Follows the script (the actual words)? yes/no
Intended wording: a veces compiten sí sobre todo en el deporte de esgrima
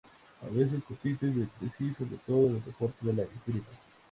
no